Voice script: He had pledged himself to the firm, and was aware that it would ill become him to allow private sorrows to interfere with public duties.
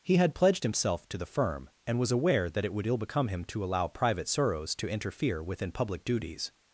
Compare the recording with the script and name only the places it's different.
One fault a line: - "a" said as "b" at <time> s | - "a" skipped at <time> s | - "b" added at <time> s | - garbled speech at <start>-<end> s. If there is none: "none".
- "with" said as "within" at 5.4 s